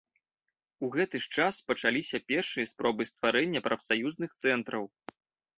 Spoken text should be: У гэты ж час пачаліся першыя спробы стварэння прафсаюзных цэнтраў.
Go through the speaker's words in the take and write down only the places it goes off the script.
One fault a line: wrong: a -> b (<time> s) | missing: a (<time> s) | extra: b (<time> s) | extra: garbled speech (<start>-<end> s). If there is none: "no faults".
no faults